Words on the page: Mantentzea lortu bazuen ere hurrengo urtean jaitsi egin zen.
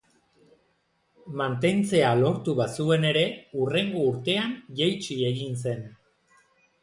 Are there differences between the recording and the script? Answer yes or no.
no